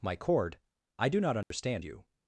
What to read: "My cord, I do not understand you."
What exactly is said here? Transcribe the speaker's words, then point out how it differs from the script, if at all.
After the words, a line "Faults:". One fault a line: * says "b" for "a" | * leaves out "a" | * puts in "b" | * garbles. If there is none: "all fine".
"My cord, I do not understand you."
Faults:
all fine